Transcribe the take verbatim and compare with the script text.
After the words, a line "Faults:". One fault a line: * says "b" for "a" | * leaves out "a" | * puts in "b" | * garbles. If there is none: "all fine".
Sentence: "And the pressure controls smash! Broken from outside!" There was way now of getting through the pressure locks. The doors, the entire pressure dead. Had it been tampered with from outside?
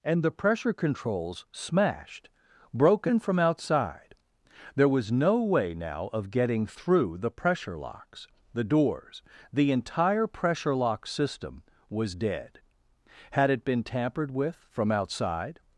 "And the pressure controls smashed! Broken from outside!" There was no way now of getting through the pressure locks. The doors, the entire pressure lock system, was dead. Had it been tampered with from outside?
Faults:
* says "smashed" for "smash"
* puts in "no"
* puts in "lock system was"